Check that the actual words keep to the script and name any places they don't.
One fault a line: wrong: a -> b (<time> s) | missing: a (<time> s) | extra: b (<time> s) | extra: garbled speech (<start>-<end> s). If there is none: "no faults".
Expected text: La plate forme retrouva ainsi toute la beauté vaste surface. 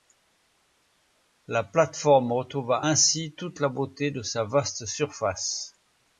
extra: de sa (4.1 s)